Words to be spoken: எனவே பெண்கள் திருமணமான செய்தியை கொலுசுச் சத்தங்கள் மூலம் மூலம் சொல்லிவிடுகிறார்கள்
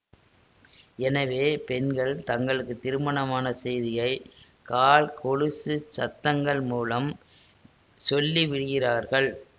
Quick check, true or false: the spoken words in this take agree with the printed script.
false